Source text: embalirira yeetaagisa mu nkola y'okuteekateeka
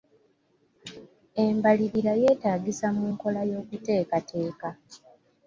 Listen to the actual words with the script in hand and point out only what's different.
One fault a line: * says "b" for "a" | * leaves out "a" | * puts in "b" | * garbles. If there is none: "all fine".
all fine